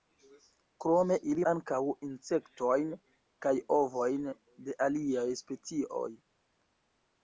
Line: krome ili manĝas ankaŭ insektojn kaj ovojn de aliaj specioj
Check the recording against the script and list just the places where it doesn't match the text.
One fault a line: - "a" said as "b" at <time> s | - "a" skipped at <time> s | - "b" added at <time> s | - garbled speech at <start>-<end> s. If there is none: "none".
- "manĝas" skipped at 1.4 s